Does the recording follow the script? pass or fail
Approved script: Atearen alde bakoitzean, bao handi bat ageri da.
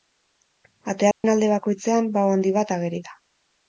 pass